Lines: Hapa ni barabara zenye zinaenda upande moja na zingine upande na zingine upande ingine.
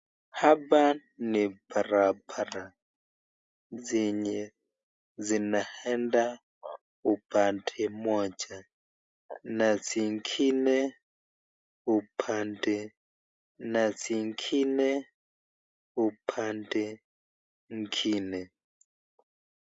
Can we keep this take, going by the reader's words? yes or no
yes